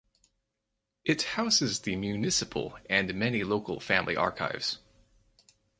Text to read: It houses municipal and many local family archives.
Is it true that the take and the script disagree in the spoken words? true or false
true